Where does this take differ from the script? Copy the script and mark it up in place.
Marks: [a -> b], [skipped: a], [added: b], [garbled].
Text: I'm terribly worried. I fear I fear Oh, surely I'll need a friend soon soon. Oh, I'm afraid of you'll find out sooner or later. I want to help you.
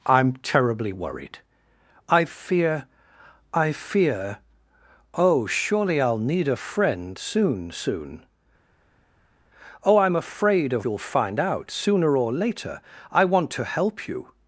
I'm terribly worried. I fear I fear Oh, surely I'll need a friend soon soon. Oh, I'm afraid of you'll find out sooner or later. I want to help you.